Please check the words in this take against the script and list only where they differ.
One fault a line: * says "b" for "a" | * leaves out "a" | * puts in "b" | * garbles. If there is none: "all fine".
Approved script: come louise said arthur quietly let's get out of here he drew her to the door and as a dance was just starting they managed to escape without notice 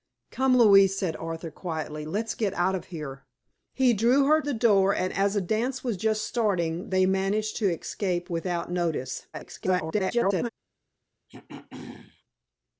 * leaves out "to"
* garbles